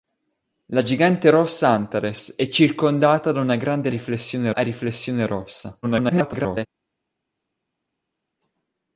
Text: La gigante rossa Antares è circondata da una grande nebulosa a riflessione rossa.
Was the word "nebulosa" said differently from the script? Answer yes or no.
yes